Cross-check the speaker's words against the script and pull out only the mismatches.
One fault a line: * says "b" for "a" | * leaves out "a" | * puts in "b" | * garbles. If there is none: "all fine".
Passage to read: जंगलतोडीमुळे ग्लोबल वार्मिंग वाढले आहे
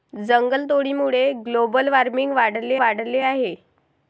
* puts in "वाढले"